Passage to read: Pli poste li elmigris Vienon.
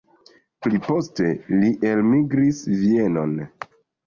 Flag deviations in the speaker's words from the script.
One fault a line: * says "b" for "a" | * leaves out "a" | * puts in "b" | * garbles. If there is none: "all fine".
all fine